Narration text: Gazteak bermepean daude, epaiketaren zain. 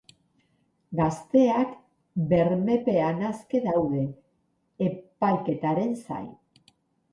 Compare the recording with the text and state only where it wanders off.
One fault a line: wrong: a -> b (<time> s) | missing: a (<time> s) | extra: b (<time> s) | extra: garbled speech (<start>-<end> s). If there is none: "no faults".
extra: aske (3.3 s)